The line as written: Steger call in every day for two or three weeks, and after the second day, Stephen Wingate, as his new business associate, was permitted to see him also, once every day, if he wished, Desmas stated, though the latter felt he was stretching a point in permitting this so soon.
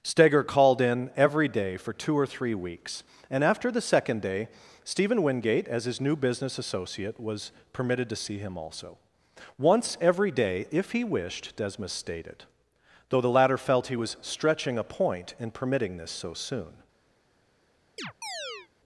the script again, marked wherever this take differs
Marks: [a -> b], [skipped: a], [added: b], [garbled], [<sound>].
Steger [call -> called] in every day for two or three weeks, and after the second day, Stephen Wingate, as his new business associate, was permitted to see him also, once every day, if he wished, Desmas stated, though the latter felt he was stretching a point in permitting this so soon. [chirp]